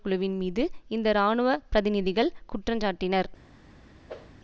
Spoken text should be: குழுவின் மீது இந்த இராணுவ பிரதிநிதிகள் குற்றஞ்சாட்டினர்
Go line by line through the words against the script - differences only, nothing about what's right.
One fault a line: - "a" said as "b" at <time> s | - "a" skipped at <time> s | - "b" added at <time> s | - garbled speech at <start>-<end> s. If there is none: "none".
none